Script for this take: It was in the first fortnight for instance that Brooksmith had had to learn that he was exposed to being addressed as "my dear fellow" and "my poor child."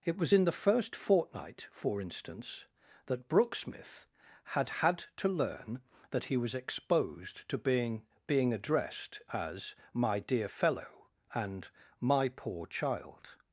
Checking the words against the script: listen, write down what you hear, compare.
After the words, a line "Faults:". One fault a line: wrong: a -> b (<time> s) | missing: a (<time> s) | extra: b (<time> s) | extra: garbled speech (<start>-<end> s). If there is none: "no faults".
It was in the first fortnight for instance that Brooksmith had had to learn that he was exposed to being being addressed as "my dear fellow" and "my poor child."
Faults:
extra: being (8.3 s)